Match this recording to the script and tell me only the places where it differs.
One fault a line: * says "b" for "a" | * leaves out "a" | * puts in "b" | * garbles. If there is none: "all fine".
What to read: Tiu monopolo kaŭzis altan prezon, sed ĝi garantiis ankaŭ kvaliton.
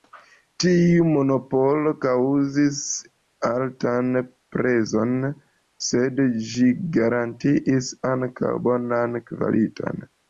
* puts in "bonan"